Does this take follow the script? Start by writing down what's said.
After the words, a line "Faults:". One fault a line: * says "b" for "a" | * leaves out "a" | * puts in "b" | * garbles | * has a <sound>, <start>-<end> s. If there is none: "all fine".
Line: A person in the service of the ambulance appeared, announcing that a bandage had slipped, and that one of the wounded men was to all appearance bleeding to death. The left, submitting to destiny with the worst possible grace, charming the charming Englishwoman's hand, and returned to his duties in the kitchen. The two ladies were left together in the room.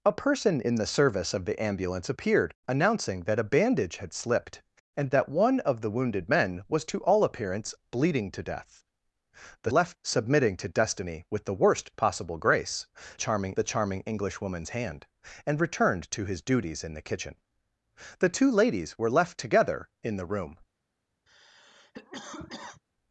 A person in the service of the ambulance appeared, announcing that a bandage had slipped, and that one of the wounded men was to all appearance bleeding to death. The left, submitting to destiny with the worst possible grace, charming the charming Englishwoman's hand, and returned to his duties in the kitchen. The two ladies were left together in the room.
Faults:
* has a cough, 21.3-22.8 s